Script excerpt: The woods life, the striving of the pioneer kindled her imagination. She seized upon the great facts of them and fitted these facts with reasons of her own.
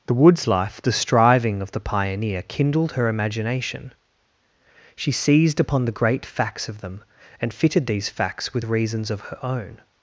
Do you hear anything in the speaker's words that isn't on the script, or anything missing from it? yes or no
no